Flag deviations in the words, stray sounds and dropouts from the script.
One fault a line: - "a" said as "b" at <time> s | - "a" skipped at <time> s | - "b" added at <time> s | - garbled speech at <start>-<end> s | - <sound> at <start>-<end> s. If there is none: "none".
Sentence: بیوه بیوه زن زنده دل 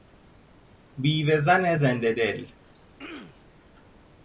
- "بیوه" skipped at 1.4 s
- throat clearing at 2.6-3.5 s